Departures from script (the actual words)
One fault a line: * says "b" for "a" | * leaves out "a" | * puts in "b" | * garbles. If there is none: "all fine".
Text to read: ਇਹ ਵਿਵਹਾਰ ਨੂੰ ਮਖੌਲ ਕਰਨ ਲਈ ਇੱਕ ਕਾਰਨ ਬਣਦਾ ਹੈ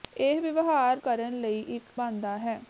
* leaves out "ਨੂੰ ਮਖੌਲ"
* leaves out "ਕਾਰਨ"